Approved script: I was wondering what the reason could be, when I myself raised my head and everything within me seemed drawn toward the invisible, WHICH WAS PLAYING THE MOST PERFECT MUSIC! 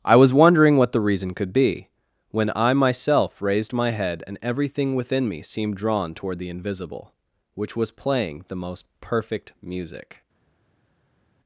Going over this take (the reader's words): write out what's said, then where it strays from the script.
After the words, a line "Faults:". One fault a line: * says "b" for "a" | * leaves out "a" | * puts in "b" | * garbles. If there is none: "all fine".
I was wondering what the reason could be, when I myself raised my head and everything within me seemed drawn toward the invisible, WHICH WAS PLAYING THE MOST PERFECT MUSIC!
Faults:
all fine